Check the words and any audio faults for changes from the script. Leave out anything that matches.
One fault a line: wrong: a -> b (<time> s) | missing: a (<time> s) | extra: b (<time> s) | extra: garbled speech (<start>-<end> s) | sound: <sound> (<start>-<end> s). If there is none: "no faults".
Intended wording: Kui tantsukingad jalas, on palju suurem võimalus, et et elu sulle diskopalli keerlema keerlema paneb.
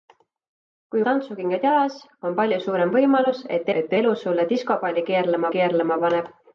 no faults